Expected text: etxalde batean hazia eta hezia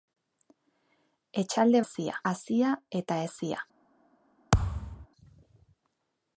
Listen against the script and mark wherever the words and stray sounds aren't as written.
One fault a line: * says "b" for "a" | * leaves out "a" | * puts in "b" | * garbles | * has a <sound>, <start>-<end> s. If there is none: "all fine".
* says "hezia" for "batean"
* has a thud, 4.5-5.1 s